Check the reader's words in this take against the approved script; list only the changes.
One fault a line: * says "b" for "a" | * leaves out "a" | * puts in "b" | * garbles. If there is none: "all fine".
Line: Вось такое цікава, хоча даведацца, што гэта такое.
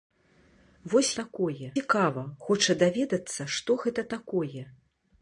all fine